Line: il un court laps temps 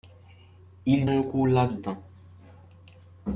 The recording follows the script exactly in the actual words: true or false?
true